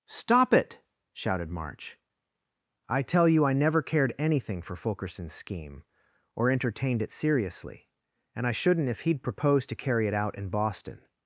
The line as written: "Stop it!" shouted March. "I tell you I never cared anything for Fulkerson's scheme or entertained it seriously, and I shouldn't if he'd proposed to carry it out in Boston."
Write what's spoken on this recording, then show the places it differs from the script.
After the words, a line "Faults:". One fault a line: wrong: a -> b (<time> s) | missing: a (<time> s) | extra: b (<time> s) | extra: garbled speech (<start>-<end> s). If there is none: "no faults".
"Stop it!" shouted March. "I tell you I never cared anything for Fulkerson's scheme or entertained it seriously, and I shouldn't if he'd proposed to carry it out in Boston."
Faults:
no faults